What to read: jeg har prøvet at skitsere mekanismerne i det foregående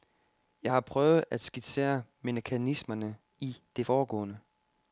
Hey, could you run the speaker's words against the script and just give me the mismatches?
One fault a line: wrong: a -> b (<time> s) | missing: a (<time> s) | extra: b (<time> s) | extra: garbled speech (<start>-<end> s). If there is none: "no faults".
no faults